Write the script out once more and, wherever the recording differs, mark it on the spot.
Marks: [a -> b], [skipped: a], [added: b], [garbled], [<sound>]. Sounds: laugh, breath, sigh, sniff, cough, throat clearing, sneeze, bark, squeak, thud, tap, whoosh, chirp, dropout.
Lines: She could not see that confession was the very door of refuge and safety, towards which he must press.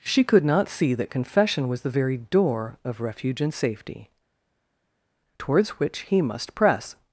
She could not see that confession was the very door of refuge and safety, towards which he must press.